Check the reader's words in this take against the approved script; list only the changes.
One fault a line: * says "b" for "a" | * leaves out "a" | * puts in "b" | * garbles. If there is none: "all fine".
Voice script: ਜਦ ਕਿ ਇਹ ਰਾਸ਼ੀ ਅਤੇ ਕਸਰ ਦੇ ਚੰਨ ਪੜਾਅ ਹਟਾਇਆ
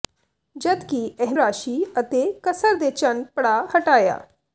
all fine